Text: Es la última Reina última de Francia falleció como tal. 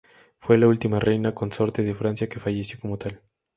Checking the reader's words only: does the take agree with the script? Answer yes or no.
no